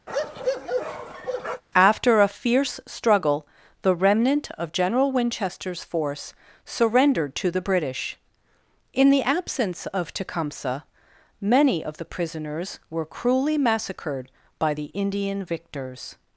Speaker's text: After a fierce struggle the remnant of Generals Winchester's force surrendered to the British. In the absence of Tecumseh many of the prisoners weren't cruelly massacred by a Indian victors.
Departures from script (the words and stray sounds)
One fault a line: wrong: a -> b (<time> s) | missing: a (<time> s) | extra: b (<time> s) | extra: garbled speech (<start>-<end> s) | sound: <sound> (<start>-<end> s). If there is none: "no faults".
sound: bark (0.1-1.6 s)
wrong: Generals -> General (4.7 s)
wrong: weren't -> were (12.9 s)
wrong: a -> the (14.7 s)